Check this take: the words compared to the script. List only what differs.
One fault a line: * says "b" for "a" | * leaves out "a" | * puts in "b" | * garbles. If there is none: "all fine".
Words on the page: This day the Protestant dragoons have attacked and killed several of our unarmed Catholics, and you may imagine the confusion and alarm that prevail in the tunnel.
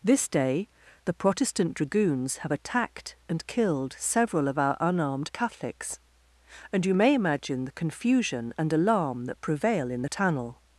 all fine